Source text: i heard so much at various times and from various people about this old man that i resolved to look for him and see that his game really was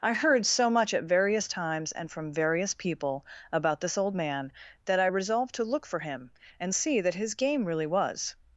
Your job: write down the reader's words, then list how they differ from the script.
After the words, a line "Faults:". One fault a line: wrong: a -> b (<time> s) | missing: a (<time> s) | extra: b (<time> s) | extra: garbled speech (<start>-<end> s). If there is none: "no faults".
i heard so much at various times and from various people about this old man that i resolved to look for him and see that his game really was
Faults:
no faults